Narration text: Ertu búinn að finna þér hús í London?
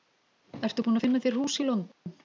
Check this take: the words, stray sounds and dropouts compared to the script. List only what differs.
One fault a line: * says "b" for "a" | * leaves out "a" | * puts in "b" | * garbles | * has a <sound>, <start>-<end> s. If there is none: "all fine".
* has a dropout, 1.9-2.1 s